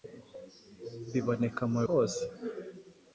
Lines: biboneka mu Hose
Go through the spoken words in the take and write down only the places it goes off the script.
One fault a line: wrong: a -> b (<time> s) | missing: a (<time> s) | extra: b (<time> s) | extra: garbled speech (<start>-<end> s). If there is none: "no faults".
no faults